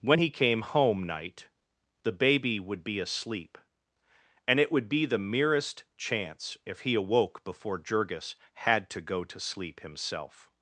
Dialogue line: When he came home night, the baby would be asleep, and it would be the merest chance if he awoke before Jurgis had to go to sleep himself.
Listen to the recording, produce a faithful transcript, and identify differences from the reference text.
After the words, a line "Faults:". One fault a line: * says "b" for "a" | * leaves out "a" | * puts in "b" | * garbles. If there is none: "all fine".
When he came home night, the baby would be asleep, and it would be the merest chance if he awoke before Jurgis had to go to sleep himself.
Faults:
all fine